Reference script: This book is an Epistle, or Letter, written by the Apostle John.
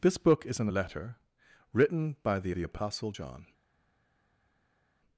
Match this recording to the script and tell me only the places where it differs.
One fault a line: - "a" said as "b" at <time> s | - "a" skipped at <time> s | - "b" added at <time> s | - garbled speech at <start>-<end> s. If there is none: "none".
- "Epistle or" skipped at 0.7 s
- "the" added at 2.5 s